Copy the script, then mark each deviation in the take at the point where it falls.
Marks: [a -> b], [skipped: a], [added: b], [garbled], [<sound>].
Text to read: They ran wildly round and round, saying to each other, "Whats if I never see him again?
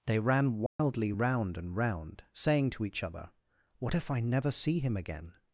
They ran wildly [dropout] round and round, saying to each other, ["Whats -> What] if I never see him again?